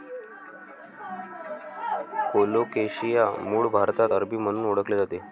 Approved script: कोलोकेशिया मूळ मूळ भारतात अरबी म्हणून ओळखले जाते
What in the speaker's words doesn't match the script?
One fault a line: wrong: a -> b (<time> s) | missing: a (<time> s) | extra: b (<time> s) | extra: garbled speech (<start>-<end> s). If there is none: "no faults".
missing: मूळ (3.7 s)